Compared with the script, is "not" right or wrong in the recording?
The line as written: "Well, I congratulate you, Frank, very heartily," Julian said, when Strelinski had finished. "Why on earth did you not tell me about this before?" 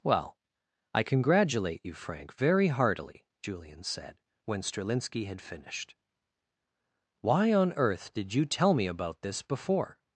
wrong